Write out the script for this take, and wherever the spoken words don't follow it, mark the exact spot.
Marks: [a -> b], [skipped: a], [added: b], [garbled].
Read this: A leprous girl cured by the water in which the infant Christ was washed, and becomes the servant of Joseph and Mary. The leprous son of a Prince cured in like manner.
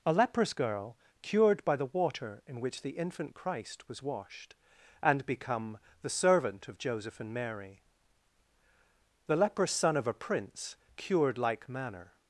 A leprous girl cured by the water in which the infant Christ was washed, and [becomes -> become] the servant of Joseph and Mary. The leprous son of a Prince cured [skipped: in] like manner.